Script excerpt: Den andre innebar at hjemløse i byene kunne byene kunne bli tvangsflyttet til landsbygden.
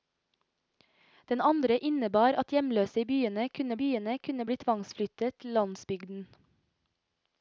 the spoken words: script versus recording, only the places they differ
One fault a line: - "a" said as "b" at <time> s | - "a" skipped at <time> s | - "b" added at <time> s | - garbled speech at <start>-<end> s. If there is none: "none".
none